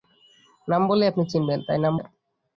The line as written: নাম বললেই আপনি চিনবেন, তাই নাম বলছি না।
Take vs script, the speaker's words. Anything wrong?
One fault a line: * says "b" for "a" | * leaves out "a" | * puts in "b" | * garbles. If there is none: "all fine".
* leaves out "বলছি"